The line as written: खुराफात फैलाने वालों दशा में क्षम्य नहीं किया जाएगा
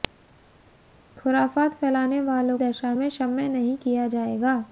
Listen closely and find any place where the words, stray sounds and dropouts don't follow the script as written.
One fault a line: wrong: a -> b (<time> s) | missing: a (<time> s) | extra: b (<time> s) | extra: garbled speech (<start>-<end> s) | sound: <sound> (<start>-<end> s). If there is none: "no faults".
no faults